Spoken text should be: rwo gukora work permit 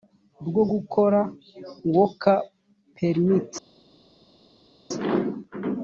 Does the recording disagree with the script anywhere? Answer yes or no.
no